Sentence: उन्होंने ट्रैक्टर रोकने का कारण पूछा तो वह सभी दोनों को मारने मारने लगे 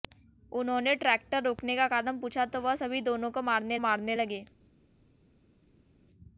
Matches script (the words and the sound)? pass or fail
pass